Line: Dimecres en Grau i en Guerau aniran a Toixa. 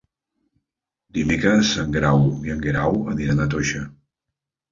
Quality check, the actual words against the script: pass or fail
pass